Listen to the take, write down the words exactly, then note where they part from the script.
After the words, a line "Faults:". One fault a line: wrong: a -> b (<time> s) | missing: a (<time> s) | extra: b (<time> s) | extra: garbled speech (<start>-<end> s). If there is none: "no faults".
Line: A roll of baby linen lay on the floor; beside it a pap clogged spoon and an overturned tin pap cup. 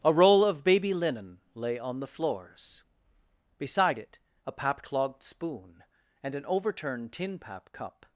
A roll of baby linen lay on the floors; beside it a pap clogged spoon and an overturned tin pap cup.
Faults:
wrong: floor -> floors (2.1 s)